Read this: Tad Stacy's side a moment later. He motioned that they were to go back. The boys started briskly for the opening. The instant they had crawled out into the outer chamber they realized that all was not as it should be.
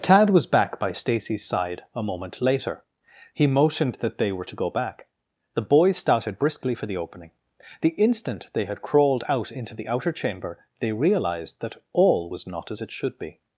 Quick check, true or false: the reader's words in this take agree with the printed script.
false